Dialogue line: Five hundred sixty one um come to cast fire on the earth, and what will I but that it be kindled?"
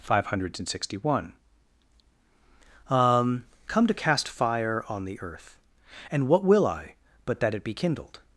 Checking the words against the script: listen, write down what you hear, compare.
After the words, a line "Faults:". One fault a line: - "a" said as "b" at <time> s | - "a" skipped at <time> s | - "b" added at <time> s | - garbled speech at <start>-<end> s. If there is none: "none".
Five hundred sixty one um come to cast fire on the earth, and what will I but that it be kindled?"
Faults:
none